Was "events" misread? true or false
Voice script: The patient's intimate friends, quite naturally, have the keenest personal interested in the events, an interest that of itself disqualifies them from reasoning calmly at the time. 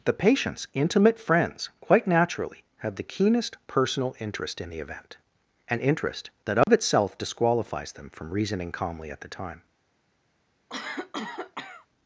true